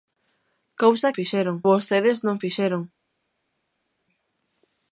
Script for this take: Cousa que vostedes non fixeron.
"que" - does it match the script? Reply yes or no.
no